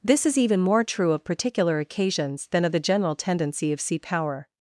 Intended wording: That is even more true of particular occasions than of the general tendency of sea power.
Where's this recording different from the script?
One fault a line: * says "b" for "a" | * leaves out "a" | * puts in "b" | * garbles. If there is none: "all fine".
* says "This" for "That"